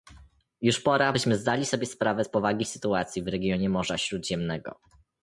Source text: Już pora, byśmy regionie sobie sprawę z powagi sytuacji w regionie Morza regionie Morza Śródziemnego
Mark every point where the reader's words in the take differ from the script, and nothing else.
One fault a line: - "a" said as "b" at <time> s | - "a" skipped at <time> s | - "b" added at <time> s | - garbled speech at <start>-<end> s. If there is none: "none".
- "regionie" said as "zdali" at 1.4 s
- "regionie Morza" skipped at 4.0 s